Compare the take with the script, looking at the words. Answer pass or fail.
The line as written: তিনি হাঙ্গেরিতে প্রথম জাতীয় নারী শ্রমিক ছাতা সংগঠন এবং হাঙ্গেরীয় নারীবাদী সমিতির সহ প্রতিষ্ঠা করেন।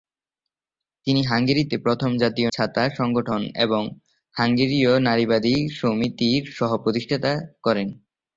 fail